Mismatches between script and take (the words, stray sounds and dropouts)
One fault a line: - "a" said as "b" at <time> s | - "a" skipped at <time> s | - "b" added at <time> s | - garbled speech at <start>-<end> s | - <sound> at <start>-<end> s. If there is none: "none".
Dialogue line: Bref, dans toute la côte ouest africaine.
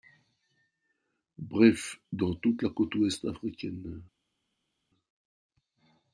none